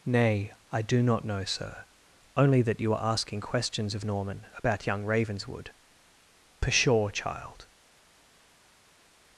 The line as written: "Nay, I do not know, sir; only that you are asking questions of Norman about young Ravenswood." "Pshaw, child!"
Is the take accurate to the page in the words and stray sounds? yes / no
yes